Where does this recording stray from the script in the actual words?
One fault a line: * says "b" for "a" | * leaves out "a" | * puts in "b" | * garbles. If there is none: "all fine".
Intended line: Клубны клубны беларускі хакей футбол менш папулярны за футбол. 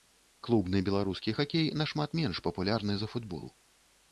* leaves out "клубны"
* says "нашмат" for "футбол"